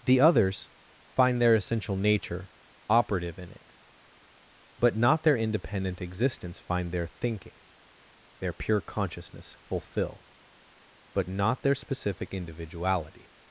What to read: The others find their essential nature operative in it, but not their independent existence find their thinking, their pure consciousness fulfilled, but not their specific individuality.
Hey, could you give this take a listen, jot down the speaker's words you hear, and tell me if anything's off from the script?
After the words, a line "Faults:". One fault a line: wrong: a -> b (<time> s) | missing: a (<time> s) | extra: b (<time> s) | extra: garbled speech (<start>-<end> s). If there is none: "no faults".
The others find their essential nature operative in it, but not their independent existence find their thinking, their pure consciousness fulfill, but not their specific individuality.
Faults:
wrong: fulfilled -> fulfill (9.6 s)